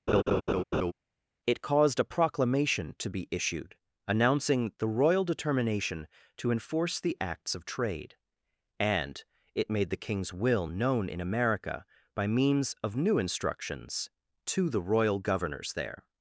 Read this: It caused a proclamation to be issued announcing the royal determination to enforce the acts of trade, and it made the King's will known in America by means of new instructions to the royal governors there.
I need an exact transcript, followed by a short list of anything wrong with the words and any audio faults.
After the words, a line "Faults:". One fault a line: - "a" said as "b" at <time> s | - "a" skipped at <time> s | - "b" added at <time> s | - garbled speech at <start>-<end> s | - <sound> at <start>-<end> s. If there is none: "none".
It caused a proclamation to be issued announcing the royal determination to enforce the acts of trade, and it made the King's will known in America by means of new instructions to the royal governors there.
Faults:
- laugh at 0.1-0.9 s